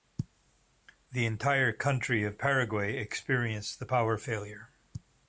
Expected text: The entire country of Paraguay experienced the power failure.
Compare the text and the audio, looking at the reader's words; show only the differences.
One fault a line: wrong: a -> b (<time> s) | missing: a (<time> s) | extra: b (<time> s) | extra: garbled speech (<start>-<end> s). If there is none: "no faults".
no faults